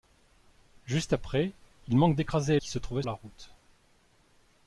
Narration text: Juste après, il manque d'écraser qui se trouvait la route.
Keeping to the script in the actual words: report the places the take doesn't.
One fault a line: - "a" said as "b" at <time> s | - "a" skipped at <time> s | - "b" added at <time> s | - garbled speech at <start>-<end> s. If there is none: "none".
none